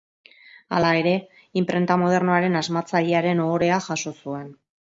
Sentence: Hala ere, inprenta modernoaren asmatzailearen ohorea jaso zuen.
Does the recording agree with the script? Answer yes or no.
yes